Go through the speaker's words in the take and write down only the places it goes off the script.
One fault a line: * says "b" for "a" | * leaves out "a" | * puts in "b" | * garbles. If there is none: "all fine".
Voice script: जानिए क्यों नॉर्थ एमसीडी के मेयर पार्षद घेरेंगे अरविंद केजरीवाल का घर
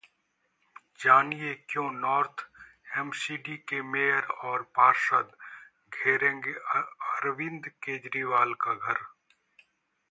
* puts in "और"